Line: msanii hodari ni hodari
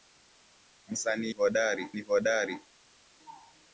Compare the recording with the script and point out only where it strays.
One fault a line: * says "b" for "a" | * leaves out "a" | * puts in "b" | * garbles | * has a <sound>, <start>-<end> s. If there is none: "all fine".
all fine